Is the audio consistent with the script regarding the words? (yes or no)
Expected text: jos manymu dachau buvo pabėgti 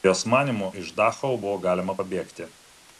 no